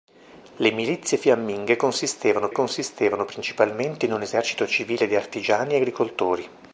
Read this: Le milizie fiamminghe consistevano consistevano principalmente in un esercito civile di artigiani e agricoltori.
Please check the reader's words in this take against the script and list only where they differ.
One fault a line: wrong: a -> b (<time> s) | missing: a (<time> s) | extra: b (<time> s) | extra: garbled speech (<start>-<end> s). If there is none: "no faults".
no faults